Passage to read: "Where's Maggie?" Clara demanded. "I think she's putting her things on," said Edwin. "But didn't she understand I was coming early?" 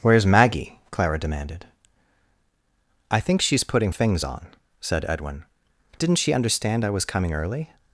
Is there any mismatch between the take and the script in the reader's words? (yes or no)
yes